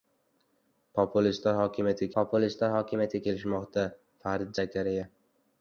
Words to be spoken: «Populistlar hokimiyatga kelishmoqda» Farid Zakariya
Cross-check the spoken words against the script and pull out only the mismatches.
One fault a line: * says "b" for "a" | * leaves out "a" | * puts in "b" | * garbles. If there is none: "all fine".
* puts in "populistlar hokimiyatga"